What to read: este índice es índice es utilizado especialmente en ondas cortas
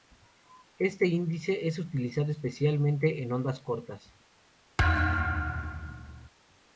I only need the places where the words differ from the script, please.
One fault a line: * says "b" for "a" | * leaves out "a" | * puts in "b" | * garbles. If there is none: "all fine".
* leaves out "índice es"